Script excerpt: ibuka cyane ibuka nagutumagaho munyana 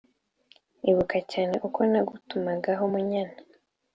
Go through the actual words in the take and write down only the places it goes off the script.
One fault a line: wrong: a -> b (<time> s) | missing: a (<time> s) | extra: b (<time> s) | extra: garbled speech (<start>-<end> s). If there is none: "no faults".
wrong: ibuka -> uko (1.7 s)